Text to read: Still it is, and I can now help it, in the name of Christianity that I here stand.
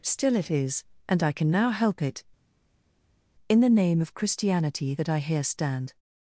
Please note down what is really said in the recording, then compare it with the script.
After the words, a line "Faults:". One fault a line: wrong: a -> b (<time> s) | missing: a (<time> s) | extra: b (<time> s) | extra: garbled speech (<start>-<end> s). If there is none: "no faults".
Still it is, and I can now help it, in the name of Christianity that I here stand.
Faults:
no faults